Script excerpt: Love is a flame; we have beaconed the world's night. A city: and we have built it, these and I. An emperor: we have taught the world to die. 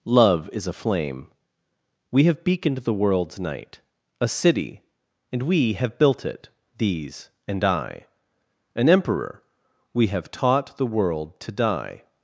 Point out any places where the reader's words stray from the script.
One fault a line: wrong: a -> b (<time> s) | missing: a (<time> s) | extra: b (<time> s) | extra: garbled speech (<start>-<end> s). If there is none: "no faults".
no faults